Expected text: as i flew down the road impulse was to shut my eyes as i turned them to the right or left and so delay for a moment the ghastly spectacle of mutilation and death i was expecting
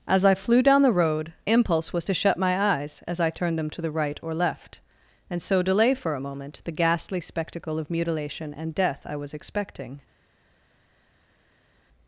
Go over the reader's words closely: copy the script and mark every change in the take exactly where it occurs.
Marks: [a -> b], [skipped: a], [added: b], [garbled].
as i flew down the road impulse was to shut my eyes as i turned them to the right or left and so delay for a moment the ghastly spectacle of mutilation and death i was expecting